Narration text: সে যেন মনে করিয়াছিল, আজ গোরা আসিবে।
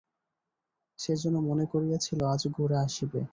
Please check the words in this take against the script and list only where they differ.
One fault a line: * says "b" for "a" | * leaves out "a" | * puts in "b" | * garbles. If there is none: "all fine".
all fine